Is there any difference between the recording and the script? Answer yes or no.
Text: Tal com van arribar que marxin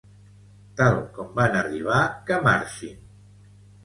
no